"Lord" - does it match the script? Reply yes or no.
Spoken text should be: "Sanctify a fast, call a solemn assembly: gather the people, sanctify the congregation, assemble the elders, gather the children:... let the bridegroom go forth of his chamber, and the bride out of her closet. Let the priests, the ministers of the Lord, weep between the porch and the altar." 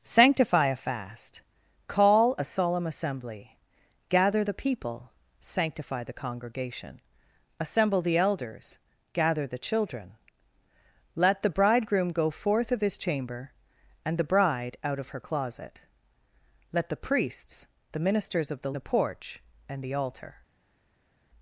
no